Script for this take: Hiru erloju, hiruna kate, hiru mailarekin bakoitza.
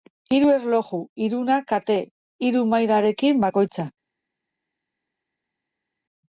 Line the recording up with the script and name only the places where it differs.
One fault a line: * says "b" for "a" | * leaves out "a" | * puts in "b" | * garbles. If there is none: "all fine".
all fine